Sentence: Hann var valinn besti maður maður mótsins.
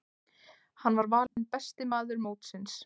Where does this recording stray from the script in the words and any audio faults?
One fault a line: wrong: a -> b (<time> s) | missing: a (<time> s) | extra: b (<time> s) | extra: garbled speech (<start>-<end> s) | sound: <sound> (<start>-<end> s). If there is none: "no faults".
sound: dropout (1.3-1.4 s)
missing: maður (2.3 s)